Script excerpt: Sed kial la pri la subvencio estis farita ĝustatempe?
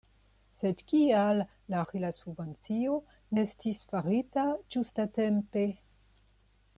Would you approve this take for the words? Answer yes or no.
yes